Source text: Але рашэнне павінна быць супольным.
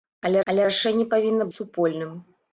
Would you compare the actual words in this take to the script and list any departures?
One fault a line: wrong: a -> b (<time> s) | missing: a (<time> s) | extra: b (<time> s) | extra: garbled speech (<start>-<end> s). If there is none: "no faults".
extra: але (0.5 s)
missing: быць (1.5 s)